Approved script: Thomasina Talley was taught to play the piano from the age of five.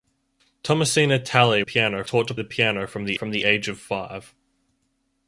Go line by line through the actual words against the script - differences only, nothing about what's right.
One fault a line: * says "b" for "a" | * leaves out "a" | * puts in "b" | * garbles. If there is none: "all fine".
* says "piano" for "was"
* leaves out "play"
* puts in "from the"